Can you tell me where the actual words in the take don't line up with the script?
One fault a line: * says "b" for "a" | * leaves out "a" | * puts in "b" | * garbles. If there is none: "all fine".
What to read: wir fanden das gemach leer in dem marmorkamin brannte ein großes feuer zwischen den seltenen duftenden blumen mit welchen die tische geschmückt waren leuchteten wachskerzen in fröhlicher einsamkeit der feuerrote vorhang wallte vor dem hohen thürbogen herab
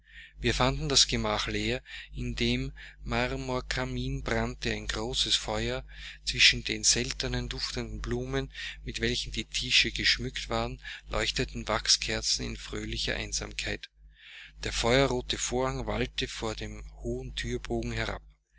all fine